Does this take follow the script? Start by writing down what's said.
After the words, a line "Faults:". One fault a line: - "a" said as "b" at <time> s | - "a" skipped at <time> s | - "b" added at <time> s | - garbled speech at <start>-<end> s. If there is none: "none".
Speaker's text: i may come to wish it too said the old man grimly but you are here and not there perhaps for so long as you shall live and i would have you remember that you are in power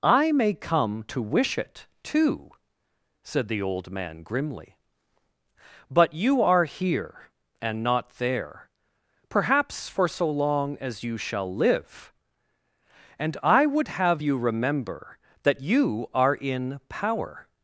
i may come to wish it too said the old man grimly but you are here and not there perhaps for so long as you shall live and i would have you remember that you are in power
Faults:
none